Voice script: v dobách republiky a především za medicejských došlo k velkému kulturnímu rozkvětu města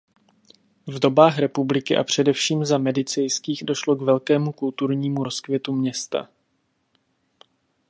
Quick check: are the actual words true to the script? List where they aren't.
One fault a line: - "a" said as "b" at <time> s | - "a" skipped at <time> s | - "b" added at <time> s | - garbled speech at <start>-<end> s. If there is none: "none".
none